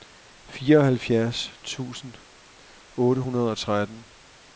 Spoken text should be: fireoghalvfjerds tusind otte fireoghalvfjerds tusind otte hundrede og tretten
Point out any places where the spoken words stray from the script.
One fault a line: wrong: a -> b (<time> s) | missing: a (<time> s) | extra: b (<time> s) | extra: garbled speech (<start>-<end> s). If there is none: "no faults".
missing: fireoghalvfjerds tusind otte (3.2 s)